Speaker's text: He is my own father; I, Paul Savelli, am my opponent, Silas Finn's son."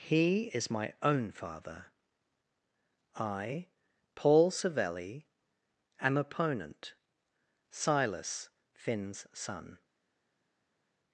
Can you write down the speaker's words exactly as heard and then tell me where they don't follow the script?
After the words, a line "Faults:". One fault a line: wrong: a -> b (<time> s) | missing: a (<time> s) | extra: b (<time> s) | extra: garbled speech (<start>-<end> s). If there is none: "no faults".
He is my own father; I, Paul Savelli, am opponent, Silas Finn's son."
Faults:
missing: my (6.2 s)